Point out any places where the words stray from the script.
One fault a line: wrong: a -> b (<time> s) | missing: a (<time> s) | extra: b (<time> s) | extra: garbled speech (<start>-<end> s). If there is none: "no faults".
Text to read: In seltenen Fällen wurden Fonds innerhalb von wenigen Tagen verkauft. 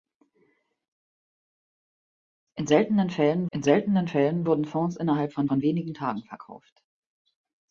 extra: in seltenen Fällen (3.5 s)
extra: von (5.4 s)